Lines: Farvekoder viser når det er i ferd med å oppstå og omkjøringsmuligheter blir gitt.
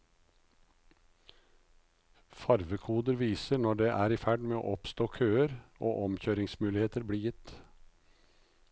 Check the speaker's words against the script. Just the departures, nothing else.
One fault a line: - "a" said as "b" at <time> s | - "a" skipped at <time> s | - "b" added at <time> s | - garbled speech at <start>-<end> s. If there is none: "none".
- "køer" added at 5.2 s